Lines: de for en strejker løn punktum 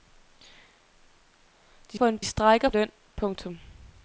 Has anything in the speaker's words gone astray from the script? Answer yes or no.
no